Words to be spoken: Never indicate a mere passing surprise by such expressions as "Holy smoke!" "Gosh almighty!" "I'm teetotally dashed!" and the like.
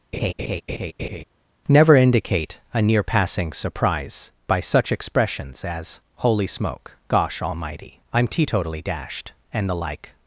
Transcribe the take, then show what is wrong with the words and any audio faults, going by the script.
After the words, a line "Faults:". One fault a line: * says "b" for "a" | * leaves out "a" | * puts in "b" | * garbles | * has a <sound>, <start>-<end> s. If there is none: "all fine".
Never indicate a near passing surprise by such expressions as "Holy smoke!" "Gosh almighty!" "I'm teetotally dashed!" and the like.
Faults:
* has a laugh, 0.1-1.2 s
* says "near" for "mere"